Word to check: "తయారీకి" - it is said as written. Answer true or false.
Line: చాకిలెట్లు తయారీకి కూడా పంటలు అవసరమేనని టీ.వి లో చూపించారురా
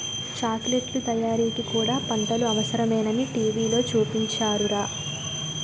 true